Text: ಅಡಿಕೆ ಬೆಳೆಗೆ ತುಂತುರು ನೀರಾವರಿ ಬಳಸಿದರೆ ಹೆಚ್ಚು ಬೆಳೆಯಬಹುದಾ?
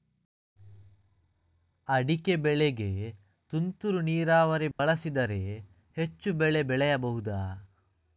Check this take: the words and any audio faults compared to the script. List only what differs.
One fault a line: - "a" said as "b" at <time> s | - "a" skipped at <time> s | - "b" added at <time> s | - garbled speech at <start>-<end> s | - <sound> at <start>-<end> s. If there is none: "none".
- dropout at 4.7-4.8 s
- "ಬೆಳೆ" added at 6.3 s